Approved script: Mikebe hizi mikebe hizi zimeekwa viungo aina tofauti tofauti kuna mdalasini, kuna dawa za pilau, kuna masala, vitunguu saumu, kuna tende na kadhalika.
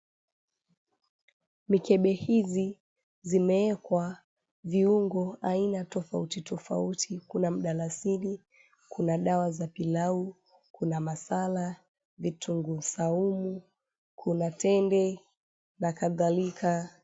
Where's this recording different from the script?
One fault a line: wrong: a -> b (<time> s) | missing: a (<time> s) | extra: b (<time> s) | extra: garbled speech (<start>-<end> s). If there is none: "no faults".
missing: mikebe hizi (2.8 s)